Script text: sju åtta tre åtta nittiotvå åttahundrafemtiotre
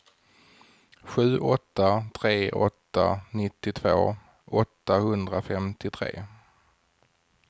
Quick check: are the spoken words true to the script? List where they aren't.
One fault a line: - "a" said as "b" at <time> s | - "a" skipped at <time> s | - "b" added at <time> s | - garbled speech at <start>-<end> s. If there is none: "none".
none